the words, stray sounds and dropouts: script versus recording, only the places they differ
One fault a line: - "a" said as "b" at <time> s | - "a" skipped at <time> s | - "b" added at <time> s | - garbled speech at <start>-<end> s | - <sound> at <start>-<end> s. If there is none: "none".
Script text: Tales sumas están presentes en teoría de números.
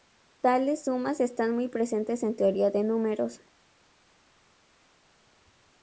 - "muy" added at 1.5 s